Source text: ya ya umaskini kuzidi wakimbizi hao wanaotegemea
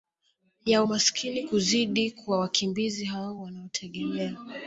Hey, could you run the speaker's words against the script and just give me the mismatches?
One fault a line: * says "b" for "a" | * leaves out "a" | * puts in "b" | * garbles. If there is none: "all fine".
* leaves out "ya"
* puts in "kwa"